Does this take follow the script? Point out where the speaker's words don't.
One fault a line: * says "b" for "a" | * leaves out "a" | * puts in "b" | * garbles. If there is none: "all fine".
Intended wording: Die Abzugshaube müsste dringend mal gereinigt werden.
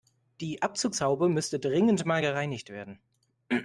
all fine